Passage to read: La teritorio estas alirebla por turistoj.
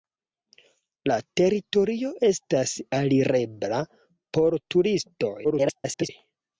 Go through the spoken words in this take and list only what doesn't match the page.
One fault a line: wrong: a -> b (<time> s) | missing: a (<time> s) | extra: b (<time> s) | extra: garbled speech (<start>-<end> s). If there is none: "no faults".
extra: garbled speech (5.4-6.1 s)